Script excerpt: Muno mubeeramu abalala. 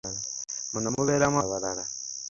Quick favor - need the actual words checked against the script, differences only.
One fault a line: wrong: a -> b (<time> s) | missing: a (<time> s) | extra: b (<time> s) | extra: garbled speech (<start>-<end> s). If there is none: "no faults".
no faults